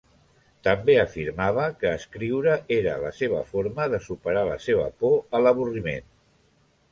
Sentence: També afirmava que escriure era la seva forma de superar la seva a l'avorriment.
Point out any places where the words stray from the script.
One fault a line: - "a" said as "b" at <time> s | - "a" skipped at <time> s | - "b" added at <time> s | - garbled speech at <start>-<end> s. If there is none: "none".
- "por" added at 5.0 s